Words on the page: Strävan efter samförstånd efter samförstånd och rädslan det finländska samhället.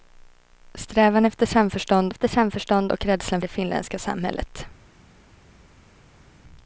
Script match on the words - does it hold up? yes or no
yes